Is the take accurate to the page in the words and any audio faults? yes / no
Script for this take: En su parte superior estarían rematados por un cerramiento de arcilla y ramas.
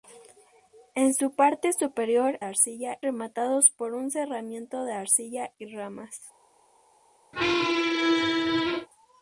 no